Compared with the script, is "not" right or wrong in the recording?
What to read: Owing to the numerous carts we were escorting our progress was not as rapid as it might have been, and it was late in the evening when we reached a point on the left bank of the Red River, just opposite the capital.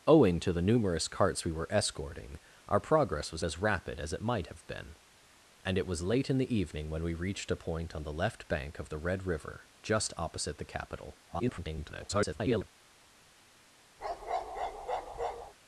wrong